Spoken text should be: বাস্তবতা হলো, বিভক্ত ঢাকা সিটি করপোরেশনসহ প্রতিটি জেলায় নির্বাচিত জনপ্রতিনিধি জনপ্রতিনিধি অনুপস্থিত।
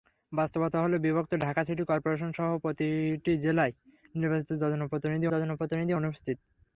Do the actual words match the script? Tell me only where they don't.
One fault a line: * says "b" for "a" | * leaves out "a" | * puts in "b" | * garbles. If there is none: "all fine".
all fine